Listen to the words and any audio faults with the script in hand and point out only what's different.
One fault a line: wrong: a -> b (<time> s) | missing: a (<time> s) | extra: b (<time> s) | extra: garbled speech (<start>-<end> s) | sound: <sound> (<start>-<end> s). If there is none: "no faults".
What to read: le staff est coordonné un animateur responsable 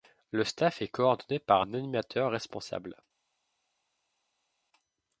extra: par (1.4 s)